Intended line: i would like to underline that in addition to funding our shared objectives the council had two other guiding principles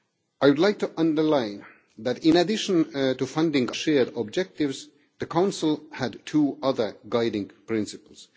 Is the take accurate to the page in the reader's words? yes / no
no